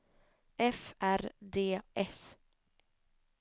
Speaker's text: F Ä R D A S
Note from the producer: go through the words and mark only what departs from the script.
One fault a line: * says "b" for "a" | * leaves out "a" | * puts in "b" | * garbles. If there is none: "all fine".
* leaves out "Ä"
* leaves out "A"